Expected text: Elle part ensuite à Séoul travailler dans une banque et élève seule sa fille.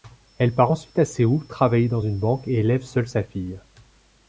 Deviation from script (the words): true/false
false